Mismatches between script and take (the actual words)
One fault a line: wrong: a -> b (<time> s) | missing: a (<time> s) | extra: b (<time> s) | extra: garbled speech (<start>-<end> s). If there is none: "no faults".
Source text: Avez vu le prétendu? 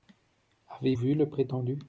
no faults